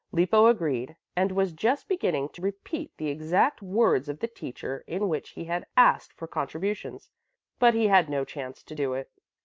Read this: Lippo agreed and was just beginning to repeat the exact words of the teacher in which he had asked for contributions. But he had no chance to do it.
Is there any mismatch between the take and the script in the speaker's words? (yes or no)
no